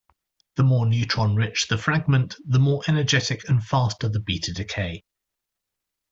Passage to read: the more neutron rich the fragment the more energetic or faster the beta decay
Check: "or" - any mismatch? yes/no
yes